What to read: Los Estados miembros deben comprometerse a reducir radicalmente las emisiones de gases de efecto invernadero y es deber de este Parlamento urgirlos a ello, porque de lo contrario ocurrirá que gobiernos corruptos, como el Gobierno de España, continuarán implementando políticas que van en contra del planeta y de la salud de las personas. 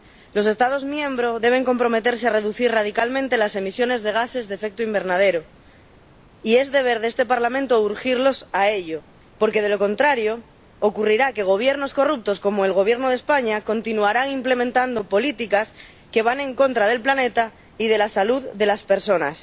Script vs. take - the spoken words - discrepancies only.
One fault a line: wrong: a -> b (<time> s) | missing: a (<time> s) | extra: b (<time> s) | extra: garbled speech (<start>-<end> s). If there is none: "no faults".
no faults